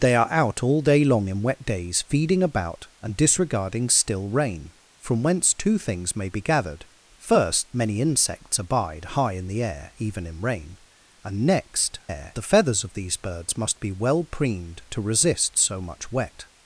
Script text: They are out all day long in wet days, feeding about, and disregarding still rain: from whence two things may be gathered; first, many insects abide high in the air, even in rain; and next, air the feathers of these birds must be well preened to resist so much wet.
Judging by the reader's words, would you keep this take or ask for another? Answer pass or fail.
pass